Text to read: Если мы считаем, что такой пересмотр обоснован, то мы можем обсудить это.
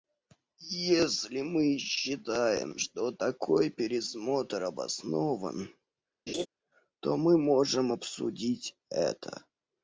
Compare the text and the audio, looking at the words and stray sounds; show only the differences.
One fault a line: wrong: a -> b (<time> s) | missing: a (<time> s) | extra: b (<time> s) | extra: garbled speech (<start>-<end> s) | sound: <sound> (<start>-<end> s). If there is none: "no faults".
sound: laugh (6.3-6.5 s)